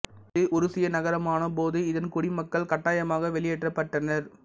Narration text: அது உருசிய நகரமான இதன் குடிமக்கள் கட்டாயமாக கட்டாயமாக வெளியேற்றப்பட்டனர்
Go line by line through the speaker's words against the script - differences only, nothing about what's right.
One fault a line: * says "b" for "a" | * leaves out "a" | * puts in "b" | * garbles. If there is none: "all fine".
* says "இது" for "அது"
* puts in "போது"
* leaves out "கட்டாயமாக"